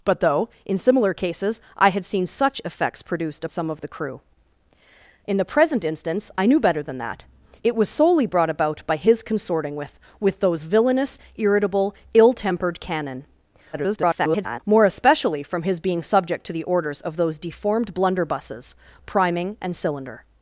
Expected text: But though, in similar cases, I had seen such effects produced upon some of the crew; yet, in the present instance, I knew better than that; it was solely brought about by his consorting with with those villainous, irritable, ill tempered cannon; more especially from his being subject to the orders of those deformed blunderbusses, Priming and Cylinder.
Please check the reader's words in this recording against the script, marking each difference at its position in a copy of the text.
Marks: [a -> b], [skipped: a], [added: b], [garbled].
But though, in similar cases, I had seen such effects produced [skipped: upon] some of the crew; [skipped: yet,] in the present instance, I knew better than that; it was solely brought about by his consorting with with those villainous, irritable, ill tempered cannon; [garbled] more especially from his being subject to the orders of those deformed blunderbusses, Priming and Cylinder.